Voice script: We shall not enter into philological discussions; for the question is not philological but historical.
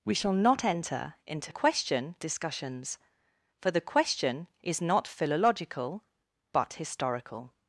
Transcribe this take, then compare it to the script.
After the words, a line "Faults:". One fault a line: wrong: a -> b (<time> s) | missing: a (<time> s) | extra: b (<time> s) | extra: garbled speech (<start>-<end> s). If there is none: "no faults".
We shall not enter into question discussions; for the question is not philological but historical.
Faults:
wrong: philological -> question (1.5 s)